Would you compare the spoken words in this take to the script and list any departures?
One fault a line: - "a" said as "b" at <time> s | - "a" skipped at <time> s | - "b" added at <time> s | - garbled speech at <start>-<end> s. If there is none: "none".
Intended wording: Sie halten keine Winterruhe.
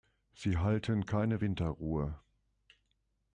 none